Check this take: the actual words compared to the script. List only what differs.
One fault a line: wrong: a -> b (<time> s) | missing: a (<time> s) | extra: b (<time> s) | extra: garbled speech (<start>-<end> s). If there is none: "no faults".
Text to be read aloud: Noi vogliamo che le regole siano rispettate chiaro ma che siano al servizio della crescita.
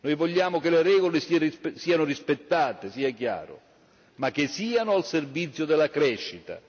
extra: sia (2.9 s)